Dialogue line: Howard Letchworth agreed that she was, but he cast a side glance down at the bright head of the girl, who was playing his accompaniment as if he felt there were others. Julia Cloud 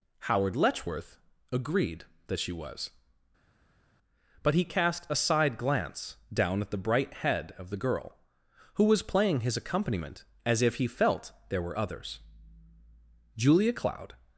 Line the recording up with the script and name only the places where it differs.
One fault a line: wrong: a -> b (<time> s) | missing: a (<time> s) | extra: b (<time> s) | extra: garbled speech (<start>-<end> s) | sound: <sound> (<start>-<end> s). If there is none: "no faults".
no faults